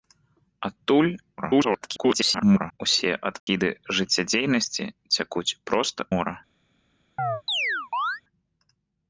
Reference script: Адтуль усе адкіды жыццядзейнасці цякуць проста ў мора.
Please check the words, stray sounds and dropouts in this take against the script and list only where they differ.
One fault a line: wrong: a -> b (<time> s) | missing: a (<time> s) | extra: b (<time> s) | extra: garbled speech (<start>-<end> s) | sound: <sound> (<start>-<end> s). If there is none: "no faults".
extra: garbled speech (1.4-2.8 s)
sound: dropout (3.4-3.5 s)
missing: ў (6.0 s)
sound: chirp (7.2-8.2 s)